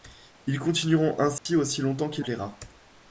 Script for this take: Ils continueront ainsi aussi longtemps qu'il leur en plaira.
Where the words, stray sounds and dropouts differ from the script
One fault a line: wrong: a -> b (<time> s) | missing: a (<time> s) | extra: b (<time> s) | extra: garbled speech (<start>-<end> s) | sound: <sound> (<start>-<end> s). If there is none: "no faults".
sound: dropout (1.4-1.5 s)
missing: leur en (2.2 s)